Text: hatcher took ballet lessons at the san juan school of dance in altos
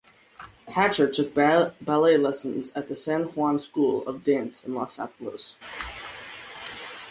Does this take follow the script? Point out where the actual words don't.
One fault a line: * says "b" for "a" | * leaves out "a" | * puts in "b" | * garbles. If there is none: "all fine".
* puts in "los"